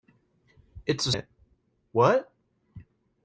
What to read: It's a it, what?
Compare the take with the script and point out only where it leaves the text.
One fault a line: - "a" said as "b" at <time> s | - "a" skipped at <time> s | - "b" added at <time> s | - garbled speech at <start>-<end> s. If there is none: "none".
none